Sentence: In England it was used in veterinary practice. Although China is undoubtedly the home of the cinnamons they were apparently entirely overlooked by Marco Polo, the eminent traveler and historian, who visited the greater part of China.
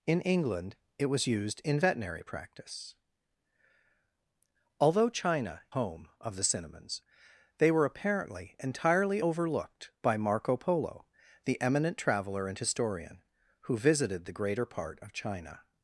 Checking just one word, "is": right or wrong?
wrong